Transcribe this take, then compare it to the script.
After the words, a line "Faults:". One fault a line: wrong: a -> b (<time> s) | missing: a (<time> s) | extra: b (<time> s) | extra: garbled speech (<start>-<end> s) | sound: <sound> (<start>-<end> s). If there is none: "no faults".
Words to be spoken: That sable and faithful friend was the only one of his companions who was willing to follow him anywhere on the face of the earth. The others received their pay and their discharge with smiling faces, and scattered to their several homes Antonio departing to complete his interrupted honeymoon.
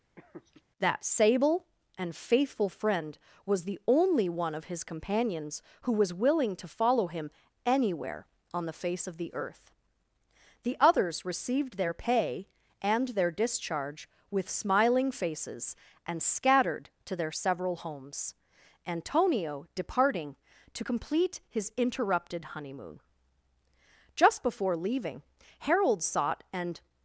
That sable and faithful friend was the only one of his companions who was willing to follow him anywhere on the face of the earth. The others received their pay and their discharge with smiling faces, and scattered to their several homes Antonio departing to complete his interrupted honeymoon. Just before leaving, Harold sought and
Faults:
sound: laugh (0.2-0.6 s)
extra: Just before leaving Harold sought and (24.1 s)